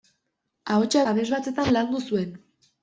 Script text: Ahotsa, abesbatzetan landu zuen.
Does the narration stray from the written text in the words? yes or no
no